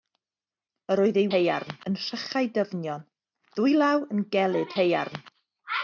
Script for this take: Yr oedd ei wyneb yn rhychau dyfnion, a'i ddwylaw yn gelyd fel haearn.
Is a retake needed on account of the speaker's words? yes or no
yes